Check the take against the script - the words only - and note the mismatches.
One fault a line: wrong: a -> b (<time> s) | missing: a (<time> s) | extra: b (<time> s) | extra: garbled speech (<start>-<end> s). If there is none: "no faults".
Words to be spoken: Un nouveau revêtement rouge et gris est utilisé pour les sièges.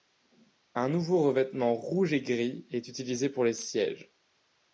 no faults